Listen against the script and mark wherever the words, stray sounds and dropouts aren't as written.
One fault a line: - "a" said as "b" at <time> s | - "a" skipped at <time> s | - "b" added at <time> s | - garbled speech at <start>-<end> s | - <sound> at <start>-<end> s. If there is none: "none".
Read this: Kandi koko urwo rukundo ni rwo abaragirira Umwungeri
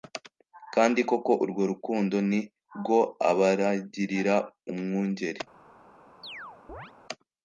- chirp at 6.2-6.9 s